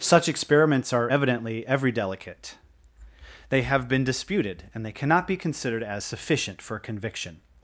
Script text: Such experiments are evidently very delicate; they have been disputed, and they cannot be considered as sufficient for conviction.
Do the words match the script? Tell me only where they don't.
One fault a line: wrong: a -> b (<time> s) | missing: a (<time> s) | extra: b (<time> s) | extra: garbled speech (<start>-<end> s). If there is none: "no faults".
wrong: very -> every (1.7 s)